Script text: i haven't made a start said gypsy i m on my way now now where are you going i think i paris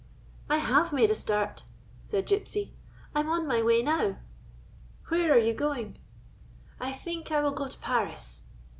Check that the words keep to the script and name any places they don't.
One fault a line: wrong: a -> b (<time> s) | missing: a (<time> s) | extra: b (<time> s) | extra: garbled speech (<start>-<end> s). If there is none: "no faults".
wrong: haven't -> have (0.6 s)
missing: now (4.2 s)
extra: will go to (7.4 s)